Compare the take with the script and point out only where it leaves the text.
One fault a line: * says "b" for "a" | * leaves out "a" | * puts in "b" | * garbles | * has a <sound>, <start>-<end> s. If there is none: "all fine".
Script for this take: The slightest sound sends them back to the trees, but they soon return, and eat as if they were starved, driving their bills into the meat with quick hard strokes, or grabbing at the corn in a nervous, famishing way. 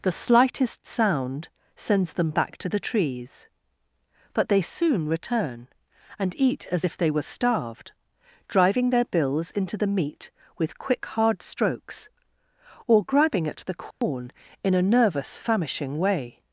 * has a dropout, 13.9-14.0 s